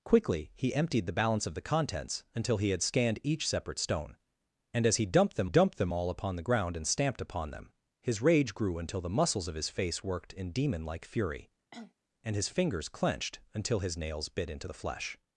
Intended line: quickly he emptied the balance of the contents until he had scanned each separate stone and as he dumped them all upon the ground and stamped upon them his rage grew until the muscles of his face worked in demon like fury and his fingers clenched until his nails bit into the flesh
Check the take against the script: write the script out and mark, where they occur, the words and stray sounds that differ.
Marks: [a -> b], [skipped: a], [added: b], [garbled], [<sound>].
quickly he emptied the balance of the contents until he had scanned each separate stone and as he dumped them [added: dumped them] all upon the ground and stamped upon them his rage grew until the muscles of his face worked in demon like fury [cough] and his fingers clenched until his nails bit into the flesh